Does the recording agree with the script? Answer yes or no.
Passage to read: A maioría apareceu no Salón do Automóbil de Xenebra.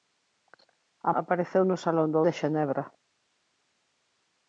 no